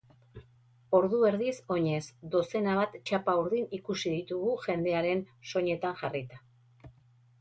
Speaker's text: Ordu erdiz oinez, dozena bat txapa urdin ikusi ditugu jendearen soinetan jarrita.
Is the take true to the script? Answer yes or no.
yes